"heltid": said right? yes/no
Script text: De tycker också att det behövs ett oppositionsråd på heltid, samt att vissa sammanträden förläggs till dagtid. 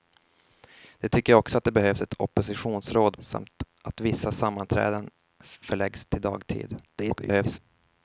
no